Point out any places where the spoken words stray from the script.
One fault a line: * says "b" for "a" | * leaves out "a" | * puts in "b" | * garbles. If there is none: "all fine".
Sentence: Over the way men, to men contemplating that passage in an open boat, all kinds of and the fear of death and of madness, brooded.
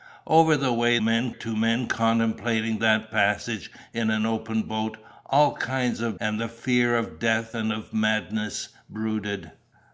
all fine